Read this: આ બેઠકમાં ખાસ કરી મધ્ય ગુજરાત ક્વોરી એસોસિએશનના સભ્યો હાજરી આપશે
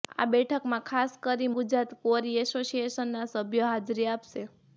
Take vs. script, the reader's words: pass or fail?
fail